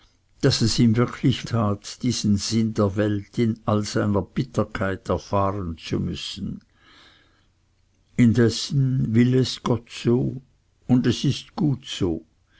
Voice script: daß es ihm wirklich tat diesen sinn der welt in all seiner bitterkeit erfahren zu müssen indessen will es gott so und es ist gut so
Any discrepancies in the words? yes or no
no